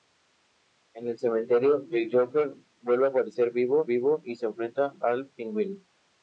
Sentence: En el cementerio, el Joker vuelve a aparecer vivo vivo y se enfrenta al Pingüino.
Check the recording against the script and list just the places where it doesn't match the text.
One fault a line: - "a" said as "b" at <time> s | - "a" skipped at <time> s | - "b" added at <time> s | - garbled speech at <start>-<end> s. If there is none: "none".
none